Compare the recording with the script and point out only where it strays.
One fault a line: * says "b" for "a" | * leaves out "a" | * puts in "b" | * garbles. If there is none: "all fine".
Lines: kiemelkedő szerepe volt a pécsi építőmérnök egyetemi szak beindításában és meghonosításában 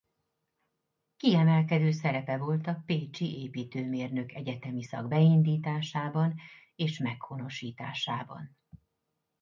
all fine